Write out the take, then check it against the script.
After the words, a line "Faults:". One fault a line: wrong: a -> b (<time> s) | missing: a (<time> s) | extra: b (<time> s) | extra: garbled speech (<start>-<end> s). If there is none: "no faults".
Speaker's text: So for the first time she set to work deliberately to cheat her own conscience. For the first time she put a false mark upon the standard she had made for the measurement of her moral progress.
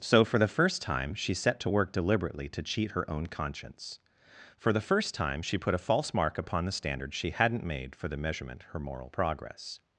So for the first time she set to work deliberately to cheat her own conscience. For the first time she put a false mark upon the standard she hadn't made for the measurement her moral progress.
Faults:
wrong: had -> hadn't (7.3 s)
missing: of (8.6 s)